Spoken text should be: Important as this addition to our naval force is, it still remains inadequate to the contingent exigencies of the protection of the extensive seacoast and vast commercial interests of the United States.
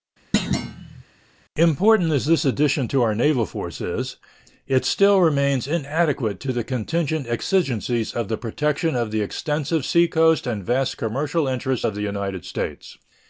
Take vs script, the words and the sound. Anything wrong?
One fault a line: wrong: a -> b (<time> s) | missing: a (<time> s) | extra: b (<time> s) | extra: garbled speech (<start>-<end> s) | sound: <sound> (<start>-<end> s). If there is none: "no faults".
sound: thud (0.3-1.0 s)